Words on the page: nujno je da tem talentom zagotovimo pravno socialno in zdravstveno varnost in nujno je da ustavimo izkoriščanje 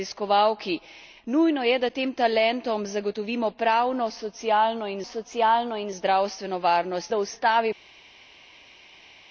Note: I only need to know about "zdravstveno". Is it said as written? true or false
false